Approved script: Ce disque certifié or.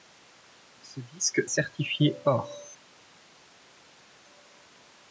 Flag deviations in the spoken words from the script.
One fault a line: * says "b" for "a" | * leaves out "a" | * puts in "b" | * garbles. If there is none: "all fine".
all fine